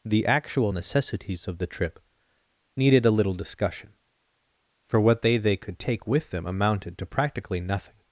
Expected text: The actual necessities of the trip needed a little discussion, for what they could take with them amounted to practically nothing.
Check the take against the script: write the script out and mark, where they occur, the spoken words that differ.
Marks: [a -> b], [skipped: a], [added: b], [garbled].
The actual necessities of the trip needed a little discussion, for what they [added: they] could take with them amounted to practically nothing.